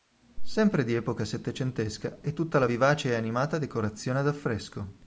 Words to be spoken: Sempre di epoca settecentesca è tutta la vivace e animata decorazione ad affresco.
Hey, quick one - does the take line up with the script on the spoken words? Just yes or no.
yes